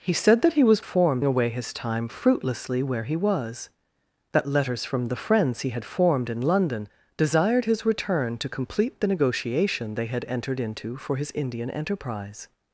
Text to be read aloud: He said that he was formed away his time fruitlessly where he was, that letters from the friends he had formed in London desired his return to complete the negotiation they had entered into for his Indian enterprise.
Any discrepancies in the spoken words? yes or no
no